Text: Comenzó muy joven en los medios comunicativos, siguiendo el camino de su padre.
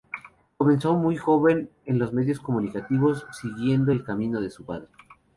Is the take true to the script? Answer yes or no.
yes